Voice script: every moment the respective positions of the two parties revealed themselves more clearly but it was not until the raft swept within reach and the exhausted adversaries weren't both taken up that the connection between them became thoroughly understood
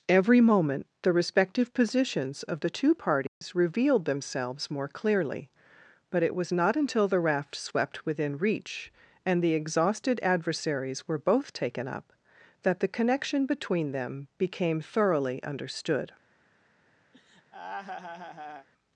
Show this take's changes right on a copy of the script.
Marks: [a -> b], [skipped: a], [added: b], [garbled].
every moment the respective positions of the two parties revealed themselves more clearly but it was not until the raft swept within reach and the exhausted adversaries [weren't -> were] both taken up that the connection between them became thoroughly understood